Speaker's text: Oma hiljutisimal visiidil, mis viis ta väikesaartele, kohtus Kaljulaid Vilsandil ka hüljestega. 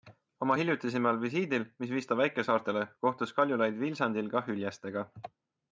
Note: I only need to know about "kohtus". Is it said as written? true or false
true